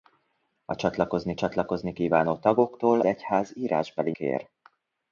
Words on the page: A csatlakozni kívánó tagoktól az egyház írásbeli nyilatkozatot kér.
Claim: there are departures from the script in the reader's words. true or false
true